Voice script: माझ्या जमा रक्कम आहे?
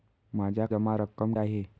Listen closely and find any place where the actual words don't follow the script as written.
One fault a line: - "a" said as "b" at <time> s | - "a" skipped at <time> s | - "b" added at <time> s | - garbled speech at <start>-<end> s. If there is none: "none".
none